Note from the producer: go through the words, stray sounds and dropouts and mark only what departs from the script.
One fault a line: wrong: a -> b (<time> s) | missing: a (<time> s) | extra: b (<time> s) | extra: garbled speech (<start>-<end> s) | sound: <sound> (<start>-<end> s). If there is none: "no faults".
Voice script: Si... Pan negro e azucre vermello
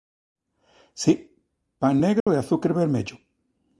sound: dropout (2.2-2.3 s)